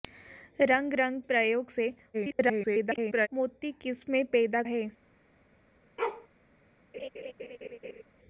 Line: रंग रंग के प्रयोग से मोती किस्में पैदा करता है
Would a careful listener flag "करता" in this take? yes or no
yes